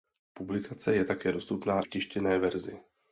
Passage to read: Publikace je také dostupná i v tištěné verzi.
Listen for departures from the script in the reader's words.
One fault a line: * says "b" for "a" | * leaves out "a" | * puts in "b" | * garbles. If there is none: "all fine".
* leaves out "i"